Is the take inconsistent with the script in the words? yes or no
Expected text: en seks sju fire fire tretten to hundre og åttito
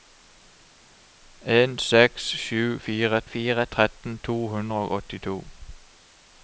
no